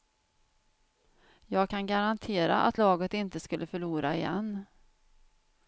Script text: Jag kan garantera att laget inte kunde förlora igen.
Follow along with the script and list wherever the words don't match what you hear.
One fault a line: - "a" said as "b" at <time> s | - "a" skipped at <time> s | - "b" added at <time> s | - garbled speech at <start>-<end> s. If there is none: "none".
- "kunde" said as "skulle" at 3.4 s